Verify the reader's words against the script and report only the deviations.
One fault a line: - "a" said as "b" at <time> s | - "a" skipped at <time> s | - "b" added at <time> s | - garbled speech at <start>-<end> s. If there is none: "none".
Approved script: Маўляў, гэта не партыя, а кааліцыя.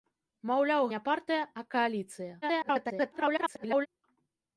- "гэта" skipped at 0.8 s
- garbled speech at 2.4-3.9 s